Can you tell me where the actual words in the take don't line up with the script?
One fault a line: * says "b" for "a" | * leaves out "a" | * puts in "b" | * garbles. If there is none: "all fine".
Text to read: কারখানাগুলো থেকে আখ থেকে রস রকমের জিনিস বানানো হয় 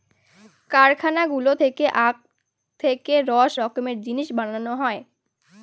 all fine